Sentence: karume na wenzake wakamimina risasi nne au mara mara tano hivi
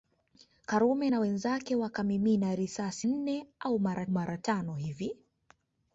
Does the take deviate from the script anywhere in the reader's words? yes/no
no